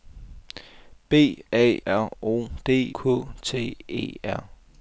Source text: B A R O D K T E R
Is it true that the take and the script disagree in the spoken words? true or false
false